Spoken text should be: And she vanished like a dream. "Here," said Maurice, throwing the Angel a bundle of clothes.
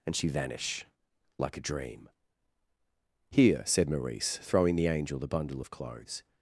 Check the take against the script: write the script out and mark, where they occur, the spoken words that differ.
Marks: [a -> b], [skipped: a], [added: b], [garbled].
And she [vanished -> vanish] like a dream. "Here," said Maurice, throwing the Angel [a -> the] bundle of clothes.